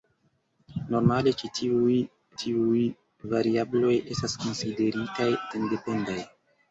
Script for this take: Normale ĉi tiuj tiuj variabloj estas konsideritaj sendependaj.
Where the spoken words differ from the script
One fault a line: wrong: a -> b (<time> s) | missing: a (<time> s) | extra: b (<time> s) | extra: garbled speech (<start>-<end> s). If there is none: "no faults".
no faults